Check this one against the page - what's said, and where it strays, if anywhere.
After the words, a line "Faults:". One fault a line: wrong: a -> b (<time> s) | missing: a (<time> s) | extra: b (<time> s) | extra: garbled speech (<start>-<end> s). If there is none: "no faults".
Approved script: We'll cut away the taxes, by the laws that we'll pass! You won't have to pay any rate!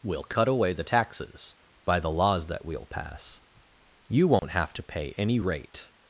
We'll cut away the taxes, by the laws that we'll pass! You won't have to pay any rate!
Faults:
no faults